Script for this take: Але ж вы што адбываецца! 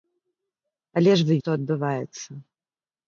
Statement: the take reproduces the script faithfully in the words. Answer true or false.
true